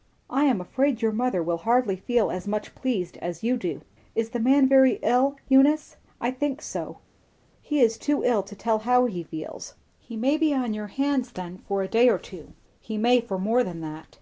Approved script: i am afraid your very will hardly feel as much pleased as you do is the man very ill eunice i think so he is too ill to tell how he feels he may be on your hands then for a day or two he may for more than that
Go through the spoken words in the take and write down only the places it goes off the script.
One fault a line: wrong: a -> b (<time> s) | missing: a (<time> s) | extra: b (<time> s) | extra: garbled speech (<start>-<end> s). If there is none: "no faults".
wrong: very -> mother (1.1 s)